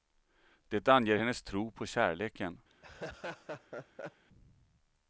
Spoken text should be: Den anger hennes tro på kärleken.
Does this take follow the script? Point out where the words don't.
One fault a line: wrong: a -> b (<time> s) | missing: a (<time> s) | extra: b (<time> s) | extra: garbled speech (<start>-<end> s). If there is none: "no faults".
wrong: Den -> Det (0.7 s)